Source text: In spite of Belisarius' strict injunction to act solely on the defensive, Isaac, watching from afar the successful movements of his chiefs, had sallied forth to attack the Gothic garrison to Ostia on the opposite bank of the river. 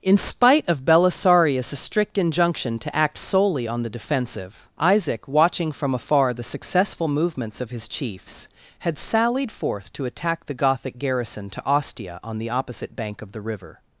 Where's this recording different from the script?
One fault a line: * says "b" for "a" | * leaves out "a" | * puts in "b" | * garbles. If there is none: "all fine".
all fine